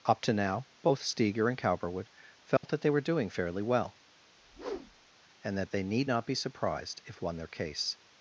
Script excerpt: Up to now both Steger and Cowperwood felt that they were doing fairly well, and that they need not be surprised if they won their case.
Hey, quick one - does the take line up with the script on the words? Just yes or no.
no